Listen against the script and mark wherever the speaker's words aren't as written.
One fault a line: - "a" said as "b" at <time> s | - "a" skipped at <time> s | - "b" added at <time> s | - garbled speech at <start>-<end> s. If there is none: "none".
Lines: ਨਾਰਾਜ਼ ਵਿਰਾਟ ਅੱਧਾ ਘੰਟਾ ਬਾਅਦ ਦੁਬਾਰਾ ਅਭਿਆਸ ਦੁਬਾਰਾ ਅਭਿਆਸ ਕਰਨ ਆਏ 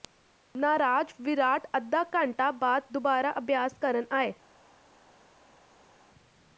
- "ਦੁਬਾਰਾ ਅਭਿਆਸ" skipped at 3.8 s